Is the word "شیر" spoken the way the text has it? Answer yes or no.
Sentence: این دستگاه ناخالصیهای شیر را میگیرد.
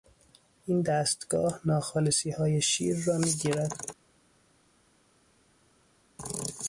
yes